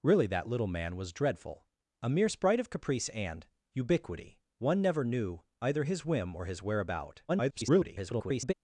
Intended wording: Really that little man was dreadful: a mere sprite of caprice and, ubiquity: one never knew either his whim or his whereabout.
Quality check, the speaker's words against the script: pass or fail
fail